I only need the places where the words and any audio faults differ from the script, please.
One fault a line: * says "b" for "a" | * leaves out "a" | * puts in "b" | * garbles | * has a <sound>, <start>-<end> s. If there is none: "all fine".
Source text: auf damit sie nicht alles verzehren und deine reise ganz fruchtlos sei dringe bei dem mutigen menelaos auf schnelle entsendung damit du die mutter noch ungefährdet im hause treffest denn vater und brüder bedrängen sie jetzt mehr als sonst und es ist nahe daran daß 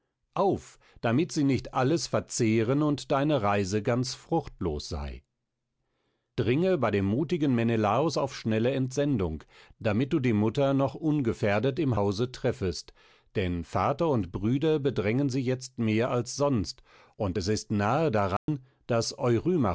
* has a dropout, 18.4-18.5 s